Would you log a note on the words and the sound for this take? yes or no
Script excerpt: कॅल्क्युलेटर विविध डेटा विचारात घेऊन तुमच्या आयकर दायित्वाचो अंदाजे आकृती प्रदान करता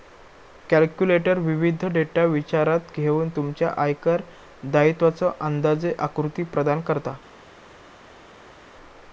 no